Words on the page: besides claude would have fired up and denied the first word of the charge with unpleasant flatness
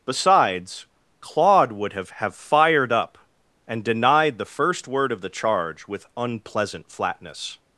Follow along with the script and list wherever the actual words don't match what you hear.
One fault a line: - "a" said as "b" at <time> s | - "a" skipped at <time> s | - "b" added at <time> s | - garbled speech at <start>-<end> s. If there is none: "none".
- "have" added at 2.1 s